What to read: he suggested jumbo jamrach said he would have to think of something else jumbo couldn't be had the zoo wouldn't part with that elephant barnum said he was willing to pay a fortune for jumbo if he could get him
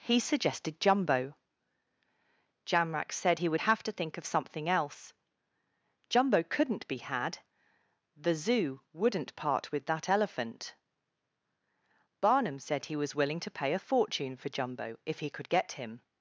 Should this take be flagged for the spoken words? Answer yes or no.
no